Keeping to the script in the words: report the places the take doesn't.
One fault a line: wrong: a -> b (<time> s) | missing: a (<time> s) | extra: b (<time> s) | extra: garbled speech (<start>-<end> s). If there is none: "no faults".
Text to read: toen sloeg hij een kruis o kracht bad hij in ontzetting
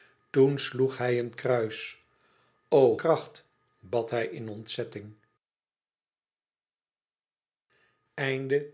no faults